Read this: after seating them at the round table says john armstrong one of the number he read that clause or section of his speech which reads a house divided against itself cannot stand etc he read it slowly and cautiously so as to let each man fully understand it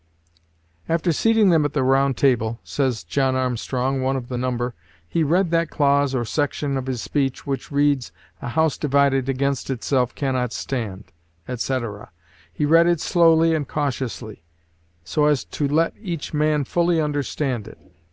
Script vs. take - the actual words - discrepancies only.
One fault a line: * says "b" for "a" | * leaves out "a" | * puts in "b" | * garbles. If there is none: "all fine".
all fine